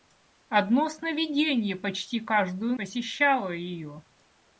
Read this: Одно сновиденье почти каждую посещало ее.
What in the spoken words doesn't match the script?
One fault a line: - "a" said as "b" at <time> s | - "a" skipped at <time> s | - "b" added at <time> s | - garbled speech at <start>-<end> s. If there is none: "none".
none